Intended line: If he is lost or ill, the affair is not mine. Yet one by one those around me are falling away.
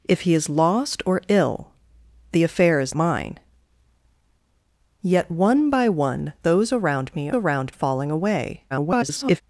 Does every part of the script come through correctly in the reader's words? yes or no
no